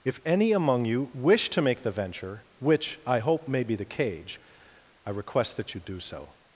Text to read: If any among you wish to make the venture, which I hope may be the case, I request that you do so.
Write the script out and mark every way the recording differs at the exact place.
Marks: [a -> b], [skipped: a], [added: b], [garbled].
If any among you wish to make the venture, which I hope may be the [case, -> cage] I request that you do so.